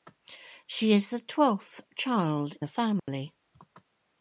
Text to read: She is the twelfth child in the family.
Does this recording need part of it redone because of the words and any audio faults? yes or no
yes